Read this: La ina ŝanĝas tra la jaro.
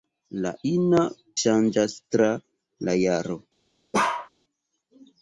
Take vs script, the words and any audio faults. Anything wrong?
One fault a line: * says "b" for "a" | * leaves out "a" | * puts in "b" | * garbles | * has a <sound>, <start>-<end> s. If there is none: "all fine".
* has a bark, 3.9-4.3 s